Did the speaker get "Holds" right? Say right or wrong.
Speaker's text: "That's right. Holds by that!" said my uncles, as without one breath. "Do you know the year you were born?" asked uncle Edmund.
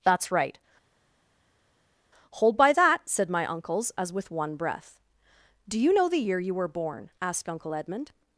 wrong